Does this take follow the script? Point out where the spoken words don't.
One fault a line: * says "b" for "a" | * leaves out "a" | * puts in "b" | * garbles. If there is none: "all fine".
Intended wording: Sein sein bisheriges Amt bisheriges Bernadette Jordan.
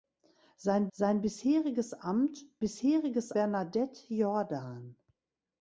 all fine